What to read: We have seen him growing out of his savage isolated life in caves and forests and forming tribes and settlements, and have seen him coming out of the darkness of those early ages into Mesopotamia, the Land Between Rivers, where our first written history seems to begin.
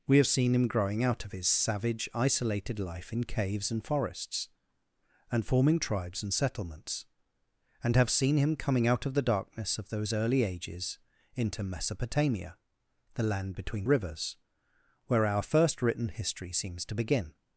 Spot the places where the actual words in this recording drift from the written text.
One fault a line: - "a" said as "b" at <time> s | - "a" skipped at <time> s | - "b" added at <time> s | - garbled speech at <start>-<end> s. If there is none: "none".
none